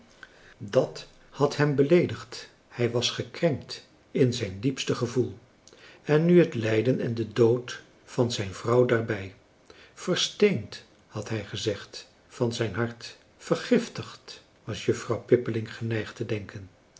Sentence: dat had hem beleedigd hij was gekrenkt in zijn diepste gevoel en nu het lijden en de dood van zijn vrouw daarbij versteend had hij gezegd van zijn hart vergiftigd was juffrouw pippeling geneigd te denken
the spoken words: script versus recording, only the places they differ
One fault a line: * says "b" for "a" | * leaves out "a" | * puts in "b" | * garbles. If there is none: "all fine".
all fine